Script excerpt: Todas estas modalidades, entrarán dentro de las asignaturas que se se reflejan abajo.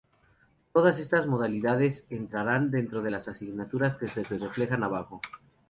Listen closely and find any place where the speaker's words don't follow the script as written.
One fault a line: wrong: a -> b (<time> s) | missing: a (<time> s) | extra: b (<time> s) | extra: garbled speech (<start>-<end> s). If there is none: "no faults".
no faults